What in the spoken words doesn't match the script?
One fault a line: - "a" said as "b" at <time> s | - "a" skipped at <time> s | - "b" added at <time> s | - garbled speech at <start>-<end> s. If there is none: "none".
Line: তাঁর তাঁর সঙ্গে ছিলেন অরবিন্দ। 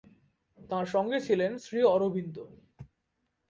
- "তাঁর" skipped at 0.8 s
- "শ্রী" added at 1.6 s